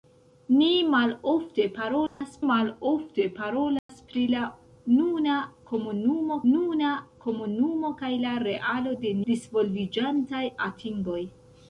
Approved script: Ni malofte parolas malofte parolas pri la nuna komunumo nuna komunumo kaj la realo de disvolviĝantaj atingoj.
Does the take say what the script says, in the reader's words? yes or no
yes